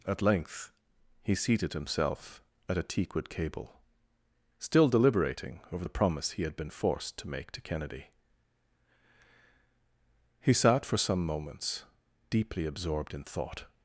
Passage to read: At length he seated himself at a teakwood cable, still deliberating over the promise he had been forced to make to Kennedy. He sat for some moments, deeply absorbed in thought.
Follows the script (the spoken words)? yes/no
yes